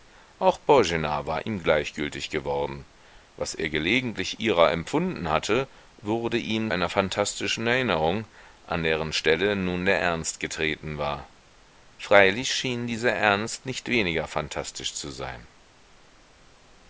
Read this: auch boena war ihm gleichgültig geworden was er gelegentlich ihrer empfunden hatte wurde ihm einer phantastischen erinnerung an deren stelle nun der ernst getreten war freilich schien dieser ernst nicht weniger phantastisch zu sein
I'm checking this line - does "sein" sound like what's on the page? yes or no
yes